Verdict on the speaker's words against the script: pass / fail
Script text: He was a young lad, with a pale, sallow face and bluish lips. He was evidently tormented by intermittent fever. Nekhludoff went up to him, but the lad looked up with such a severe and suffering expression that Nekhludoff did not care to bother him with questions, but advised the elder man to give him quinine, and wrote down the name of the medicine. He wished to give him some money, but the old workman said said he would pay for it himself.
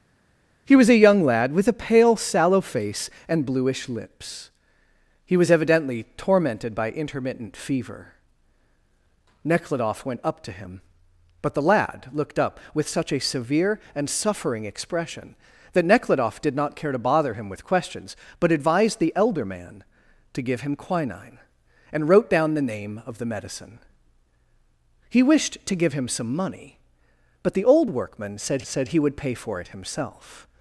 pass